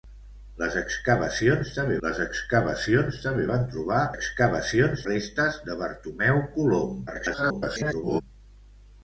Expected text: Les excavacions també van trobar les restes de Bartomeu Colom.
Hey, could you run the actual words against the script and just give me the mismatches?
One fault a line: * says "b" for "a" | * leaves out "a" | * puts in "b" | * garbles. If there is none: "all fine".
* puts in "les excavacions també"
* says "excavacions" for "les"
* garbles